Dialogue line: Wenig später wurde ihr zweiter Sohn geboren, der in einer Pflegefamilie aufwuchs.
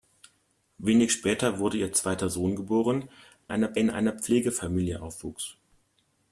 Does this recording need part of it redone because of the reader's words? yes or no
yes